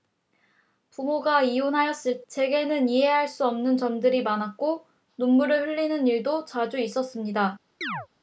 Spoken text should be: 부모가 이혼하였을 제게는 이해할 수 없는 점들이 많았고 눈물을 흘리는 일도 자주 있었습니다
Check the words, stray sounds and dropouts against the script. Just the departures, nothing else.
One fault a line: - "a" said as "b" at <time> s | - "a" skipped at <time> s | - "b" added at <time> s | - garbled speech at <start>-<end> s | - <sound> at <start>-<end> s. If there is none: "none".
- chirp at 7.8-8.1 s